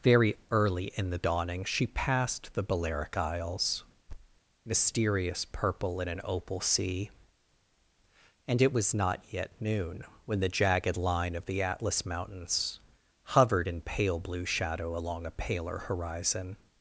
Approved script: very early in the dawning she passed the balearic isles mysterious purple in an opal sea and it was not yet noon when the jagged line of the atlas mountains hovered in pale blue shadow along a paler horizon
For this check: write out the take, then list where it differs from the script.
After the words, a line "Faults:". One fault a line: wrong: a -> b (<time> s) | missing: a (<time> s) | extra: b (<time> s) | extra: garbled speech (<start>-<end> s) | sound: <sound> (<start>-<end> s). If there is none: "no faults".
very early in the dawning she passed the balearic isles mysterious purple in an opal sea and it was not yet noon when the jagged line of the atlas mountains hovered in pale blue shadow along a paler horizon
Faults:
sound: thud (4.1-4.4 s)